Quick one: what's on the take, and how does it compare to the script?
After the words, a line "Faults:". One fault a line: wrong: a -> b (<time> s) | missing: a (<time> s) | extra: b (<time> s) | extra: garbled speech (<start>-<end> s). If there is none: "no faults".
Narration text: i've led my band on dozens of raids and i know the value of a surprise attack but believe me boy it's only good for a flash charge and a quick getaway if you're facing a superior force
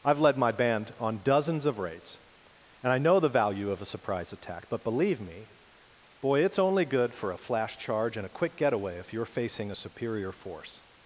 i've led my band on dozens of raids and i know the value of a surprise attack but believe me boy it's only good for a flash charge and a quick getaway if you're facing a superior force
Faults:
no faults